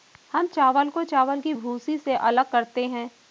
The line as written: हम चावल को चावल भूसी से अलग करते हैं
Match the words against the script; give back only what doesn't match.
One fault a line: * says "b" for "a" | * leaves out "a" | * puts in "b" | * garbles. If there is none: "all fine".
* puts in "की"